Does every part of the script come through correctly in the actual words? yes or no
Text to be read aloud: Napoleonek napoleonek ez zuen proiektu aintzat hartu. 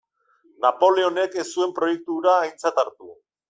no